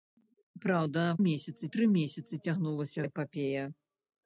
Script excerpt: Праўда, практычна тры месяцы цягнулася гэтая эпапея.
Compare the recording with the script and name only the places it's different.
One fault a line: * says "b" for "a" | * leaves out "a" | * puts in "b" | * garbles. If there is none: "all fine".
* says "месяцы" for "практычна"
* leaves out "гэтая"